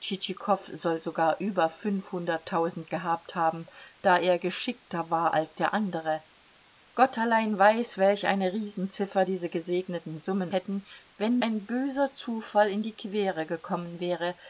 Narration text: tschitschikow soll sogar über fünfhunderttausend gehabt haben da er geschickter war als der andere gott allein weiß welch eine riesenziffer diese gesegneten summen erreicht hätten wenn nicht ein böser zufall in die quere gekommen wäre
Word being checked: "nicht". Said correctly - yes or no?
no